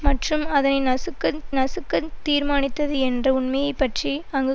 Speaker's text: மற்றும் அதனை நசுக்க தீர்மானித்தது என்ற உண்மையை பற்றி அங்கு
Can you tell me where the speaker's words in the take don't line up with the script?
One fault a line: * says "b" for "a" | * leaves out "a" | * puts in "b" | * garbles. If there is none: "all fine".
* puts in "நசுக்க"